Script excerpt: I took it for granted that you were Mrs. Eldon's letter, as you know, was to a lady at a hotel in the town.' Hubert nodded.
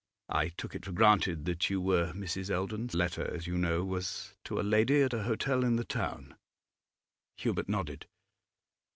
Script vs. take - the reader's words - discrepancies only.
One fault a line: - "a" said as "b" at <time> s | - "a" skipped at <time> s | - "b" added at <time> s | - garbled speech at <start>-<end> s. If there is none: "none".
none